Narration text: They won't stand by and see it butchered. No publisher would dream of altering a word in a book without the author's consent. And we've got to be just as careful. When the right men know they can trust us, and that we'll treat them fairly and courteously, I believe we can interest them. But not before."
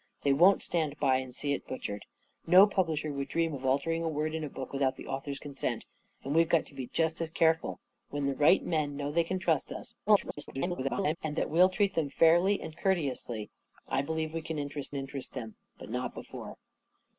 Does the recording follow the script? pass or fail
fail